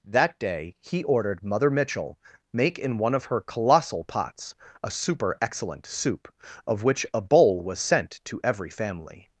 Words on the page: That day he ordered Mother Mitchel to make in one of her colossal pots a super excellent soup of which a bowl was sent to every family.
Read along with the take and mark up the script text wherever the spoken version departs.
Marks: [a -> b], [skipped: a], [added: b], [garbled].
That day he ordered Mother Mitchel [skipped: to] make in one of her colossal pots a super excellent soup of which a bowl was sent to every family.